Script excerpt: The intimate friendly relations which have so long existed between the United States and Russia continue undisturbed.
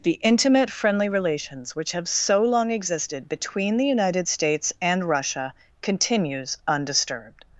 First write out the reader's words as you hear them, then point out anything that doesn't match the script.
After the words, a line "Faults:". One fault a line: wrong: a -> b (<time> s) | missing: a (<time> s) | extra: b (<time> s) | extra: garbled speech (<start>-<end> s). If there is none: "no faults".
The intimate friendly relations which have so long existed between the United States and Russia continues undisturbed.
Faults:
wrong: continue -> continues (5.8 s)